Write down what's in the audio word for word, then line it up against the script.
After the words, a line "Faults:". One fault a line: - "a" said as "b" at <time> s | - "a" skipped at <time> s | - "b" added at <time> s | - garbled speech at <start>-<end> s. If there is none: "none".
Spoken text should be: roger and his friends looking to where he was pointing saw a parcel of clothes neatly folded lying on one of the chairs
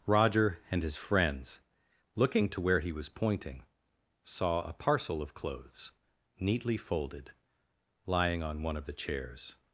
roger and his friends looking to where he was pointing saw a parcel of clothes neatly folded lying on one of the chairs
Faults:
none